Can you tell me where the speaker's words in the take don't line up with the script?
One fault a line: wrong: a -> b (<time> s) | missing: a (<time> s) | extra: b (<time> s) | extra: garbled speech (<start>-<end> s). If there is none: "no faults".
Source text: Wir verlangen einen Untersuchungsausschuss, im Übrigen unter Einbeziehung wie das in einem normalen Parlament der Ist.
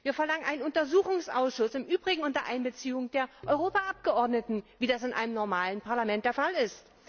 extra: der Europaabgeordneten (3.1 s)
extra: Fall (6.3 s)